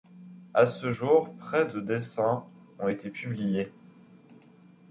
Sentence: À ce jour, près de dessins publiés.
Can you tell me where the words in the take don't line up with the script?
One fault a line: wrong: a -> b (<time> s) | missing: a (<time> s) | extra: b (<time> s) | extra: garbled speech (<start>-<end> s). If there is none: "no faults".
extra: ont été (2.8 s)